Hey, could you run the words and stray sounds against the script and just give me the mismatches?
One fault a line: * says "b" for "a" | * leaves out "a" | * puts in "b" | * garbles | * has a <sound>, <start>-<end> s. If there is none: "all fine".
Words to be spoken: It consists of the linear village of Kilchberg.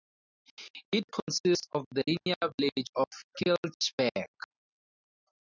* has a dropout, 2.2-2.3 s